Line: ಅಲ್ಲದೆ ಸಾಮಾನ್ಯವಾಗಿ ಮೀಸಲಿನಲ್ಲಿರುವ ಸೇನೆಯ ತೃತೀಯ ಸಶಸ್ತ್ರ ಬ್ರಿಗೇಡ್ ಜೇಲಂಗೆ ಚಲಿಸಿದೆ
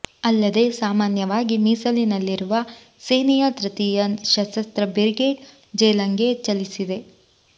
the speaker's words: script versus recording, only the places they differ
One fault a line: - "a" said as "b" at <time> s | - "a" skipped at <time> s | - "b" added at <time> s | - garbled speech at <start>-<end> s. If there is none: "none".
none